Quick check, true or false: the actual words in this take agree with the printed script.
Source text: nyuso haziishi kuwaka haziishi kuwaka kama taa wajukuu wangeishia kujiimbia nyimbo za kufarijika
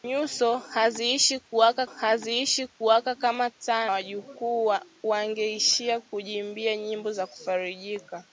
true